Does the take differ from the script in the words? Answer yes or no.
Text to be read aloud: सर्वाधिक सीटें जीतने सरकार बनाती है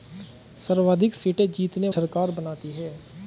no